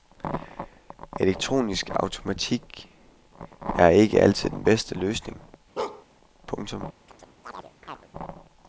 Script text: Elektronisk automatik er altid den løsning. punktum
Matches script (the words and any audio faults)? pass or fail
fail